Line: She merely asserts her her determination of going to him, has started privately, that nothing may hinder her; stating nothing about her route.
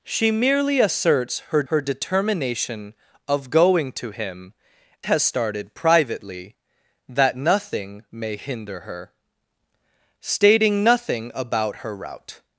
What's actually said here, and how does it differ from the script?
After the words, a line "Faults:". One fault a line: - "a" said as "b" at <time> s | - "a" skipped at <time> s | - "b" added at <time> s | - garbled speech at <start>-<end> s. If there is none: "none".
She merely asserts her her determination of going to him, has started privately, that nothing may hinder her; stating nothing about her route.
Faults:
none